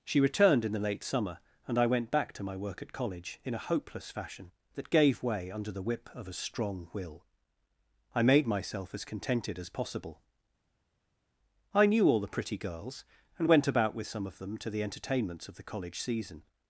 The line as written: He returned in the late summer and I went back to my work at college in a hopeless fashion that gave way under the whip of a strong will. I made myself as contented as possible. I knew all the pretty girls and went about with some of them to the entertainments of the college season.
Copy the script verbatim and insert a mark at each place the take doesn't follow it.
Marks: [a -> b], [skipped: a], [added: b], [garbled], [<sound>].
[He -> She] returned in the late summer and I went back to my work at college in a hopeless fashion that gave way under the whip of a strong will. I made myself as contented as possible. I knew all the pretty girls and went about with some of them to the entertainments of the college season.